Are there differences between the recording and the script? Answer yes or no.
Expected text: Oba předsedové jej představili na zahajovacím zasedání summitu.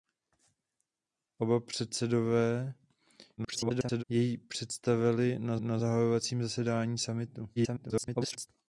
yes